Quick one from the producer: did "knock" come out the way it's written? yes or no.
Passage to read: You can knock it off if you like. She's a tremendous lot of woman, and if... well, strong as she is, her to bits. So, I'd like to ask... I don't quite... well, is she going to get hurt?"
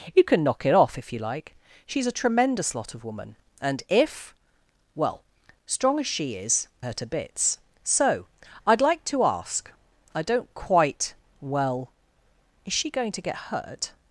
yes